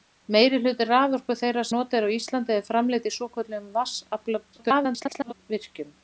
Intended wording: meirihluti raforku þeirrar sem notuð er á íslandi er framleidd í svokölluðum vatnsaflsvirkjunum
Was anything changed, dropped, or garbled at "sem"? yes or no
yes